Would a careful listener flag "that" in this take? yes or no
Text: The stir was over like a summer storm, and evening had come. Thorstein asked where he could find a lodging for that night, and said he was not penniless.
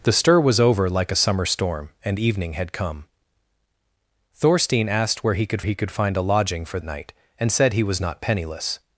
yes